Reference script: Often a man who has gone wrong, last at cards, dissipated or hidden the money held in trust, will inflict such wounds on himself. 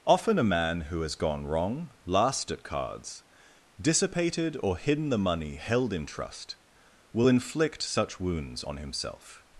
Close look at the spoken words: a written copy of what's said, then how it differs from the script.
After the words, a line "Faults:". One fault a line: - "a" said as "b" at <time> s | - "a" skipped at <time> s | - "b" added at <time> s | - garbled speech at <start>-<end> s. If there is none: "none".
Often a man who has gone wrong, last at cards, dissipated or hidden the money held in trust, will inflict such wounds on himself.
Faults:
none